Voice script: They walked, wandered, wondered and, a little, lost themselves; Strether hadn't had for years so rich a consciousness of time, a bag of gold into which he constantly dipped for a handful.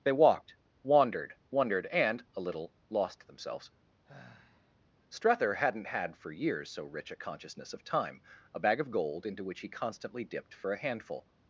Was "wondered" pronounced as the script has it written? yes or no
yes